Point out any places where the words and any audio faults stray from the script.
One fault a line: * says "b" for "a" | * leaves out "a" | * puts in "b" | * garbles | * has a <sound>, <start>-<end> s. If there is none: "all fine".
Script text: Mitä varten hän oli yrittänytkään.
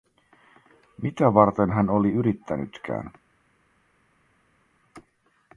all fine